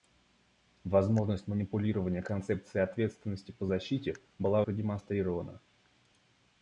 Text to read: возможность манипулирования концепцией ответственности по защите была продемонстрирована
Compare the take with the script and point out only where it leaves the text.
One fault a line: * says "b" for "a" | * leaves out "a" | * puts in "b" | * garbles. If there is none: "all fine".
all fine